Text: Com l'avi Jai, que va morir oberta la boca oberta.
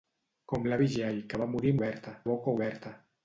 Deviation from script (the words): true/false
false